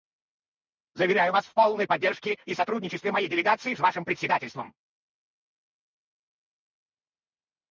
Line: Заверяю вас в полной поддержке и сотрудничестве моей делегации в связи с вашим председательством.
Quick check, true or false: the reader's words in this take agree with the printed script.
false